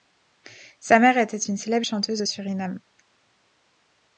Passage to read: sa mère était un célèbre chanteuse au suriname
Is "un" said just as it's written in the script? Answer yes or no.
no